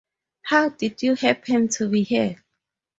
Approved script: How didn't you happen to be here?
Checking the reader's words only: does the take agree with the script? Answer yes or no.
no